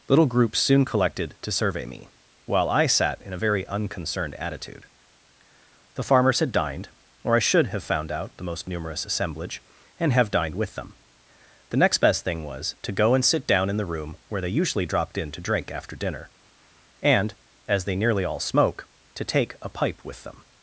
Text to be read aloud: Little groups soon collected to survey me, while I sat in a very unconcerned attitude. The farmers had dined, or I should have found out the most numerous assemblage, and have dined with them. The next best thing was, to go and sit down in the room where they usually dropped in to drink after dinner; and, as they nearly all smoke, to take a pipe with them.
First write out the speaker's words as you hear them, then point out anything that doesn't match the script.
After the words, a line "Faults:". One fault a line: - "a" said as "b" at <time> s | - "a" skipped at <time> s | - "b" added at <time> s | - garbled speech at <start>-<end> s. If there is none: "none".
Little groups soon collected to survey me, while I sat in a very unconcerned attitude. The farmers had dined, or I should have found out the most numerous assemblage, and have dined with them. The next best thing was, to go and sit down in the room where they usually dropped in to drink after dinner; and, as they nearly all smoke, to take a pipe with them.
Faults:
none